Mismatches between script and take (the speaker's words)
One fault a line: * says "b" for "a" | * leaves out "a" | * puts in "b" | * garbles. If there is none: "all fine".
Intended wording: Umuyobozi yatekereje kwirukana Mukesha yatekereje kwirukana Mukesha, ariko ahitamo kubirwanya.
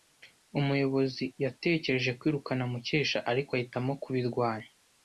* leaves out "yatekereje kwirukana Mukesha"